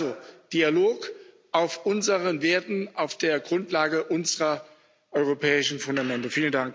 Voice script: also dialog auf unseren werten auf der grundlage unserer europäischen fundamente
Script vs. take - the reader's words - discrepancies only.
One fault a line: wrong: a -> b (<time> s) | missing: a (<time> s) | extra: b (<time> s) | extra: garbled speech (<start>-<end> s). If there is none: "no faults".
no faults